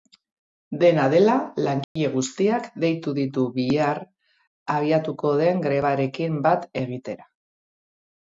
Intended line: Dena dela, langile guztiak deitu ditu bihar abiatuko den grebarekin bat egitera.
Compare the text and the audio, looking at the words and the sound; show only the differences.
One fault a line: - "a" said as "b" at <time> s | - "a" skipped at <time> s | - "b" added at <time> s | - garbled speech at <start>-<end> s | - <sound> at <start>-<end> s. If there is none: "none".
- dropout at 1.8-2.0 s